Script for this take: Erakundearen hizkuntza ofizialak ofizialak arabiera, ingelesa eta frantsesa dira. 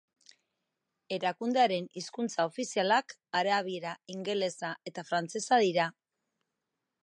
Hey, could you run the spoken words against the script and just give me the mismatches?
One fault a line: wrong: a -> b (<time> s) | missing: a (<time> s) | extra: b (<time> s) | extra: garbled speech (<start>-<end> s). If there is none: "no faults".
missing: ofizialak (3.1 s)